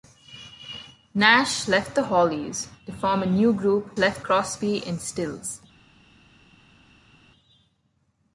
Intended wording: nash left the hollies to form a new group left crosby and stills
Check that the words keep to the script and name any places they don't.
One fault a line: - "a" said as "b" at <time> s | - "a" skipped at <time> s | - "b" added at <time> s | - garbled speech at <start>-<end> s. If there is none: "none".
none